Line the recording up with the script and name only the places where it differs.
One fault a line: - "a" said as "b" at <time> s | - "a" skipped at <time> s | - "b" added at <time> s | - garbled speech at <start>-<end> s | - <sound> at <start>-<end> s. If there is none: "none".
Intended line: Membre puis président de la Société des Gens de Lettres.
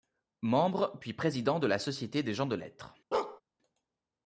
- bark at 3.1-3.4 s